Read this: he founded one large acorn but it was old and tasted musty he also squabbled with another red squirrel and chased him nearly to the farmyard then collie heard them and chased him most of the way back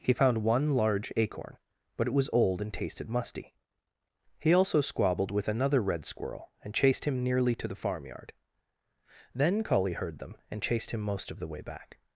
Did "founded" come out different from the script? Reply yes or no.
yes